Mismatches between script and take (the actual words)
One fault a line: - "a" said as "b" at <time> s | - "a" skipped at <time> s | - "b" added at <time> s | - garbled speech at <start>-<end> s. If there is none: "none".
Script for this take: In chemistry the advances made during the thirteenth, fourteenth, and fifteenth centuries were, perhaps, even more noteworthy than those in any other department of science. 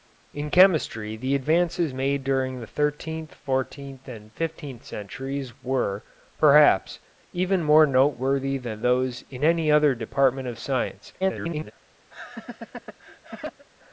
- garbled speech at 11.2-11.7 s